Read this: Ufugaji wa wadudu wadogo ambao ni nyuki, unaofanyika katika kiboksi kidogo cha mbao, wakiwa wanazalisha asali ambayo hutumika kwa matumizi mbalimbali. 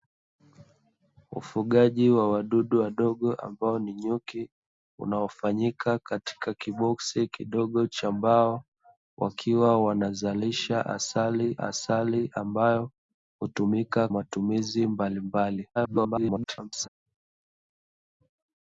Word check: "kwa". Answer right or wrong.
wrong